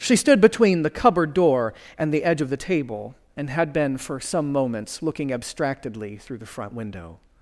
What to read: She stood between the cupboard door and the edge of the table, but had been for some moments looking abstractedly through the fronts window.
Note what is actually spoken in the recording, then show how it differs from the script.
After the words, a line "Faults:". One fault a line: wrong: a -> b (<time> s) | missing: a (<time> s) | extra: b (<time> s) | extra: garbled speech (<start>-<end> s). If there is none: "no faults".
She stood between the cupboard door and the edge of the table, and had been for some moments looking abstractedly through the front window.
Faults:
wrong: but -> and (3.4 s)
wrong: fronts -> front (6.5 s)